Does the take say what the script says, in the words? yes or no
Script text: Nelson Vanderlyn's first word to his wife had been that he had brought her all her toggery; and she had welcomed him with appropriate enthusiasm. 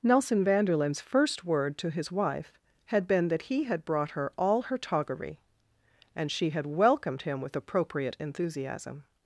yes